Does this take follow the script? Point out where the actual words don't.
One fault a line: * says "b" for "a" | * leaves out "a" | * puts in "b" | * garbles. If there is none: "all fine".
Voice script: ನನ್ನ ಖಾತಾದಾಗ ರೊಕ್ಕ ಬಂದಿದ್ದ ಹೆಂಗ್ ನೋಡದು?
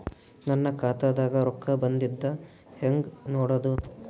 all fine